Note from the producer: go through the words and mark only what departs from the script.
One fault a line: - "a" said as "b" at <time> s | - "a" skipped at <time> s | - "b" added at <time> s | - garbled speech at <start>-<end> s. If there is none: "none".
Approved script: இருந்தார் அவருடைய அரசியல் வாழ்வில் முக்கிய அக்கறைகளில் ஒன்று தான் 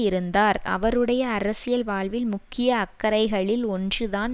none